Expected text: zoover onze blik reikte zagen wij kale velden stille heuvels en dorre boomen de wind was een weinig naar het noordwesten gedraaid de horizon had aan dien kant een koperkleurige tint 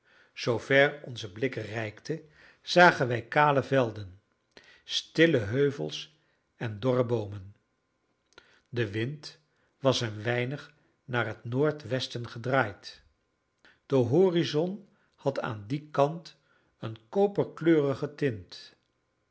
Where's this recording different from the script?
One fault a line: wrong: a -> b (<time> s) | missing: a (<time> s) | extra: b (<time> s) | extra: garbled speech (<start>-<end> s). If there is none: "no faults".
no faults